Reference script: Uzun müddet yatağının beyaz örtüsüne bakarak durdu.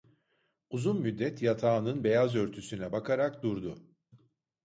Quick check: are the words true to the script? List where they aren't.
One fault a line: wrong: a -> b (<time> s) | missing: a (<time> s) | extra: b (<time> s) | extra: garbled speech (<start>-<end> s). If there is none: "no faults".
no faults